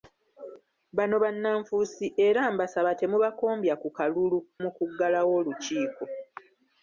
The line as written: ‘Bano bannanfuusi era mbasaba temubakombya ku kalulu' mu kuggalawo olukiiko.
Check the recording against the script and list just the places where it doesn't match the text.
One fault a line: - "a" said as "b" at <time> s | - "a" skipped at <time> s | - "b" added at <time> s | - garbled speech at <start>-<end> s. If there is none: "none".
none